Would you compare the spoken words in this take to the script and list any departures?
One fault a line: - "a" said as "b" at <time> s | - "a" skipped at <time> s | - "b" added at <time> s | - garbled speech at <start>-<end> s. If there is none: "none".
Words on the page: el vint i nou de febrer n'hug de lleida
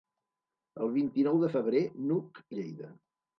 none